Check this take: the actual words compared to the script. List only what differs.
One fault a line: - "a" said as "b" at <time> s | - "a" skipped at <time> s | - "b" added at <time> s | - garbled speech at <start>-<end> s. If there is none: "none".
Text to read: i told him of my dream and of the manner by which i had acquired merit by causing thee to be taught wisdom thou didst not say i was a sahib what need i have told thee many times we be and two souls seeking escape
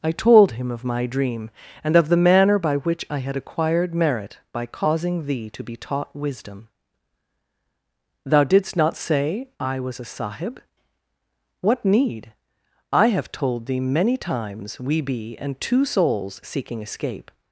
none